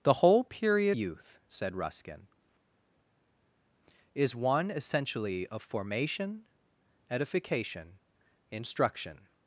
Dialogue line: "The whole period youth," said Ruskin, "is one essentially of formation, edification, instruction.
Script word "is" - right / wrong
right